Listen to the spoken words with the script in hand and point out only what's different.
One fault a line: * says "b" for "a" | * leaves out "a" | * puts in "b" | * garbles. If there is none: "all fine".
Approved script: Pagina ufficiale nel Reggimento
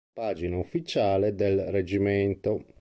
* says "del" for "nel"